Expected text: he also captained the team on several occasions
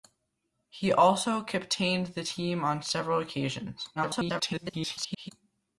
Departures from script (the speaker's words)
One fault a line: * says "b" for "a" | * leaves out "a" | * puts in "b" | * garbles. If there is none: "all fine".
* garbles